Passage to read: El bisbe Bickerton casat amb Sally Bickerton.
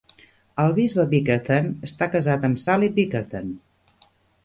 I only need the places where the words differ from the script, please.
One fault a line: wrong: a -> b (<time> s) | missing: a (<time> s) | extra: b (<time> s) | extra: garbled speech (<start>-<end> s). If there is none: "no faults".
extra: està (1.9 s)